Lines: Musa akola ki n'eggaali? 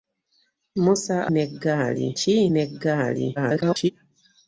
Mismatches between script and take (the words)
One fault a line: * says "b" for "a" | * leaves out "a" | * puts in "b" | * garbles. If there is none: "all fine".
* says "n'eggaali" for "akola"
* garbles